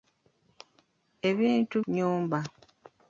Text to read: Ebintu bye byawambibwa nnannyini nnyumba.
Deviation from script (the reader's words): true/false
true